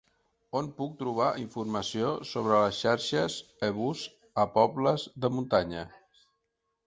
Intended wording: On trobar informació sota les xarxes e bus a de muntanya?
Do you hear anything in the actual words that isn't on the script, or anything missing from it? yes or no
yes